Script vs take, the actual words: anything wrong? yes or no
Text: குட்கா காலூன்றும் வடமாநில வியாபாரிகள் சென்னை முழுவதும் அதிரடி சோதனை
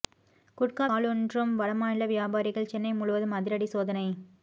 no